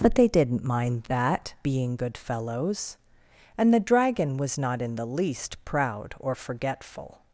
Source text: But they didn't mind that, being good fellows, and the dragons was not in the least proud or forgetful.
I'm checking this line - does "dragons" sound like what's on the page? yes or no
no